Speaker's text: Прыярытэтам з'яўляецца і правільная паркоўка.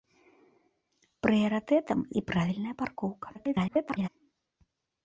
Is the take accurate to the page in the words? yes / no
no